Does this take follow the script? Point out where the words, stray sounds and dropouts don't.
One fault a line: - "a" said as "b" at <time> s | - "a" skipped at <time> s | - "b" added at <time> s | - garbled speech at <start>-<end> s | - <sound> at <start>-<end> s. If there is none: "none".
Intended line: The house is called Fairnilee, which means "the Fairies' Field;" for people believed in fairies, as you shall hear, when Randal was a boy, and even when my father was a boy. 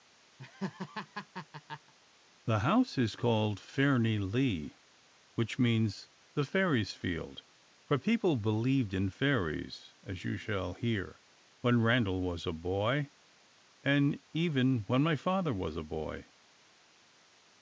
- laugh at 0.4-1.9 s